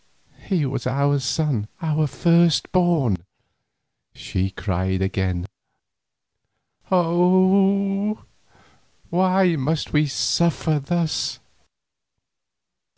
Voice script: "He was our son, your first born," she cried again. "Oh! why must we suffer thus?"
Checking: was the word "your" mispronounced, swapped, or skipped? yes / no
yes